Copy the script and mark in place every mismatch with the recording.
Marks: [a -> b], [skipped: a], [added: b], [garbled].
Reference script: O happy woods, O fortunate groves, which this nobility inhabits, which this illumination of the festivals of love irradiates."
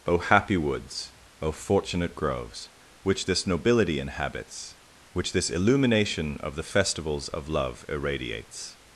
O happy woods, O fortunate groves, which this nobility inhabits, which this illumination of the festivals of love irradiates."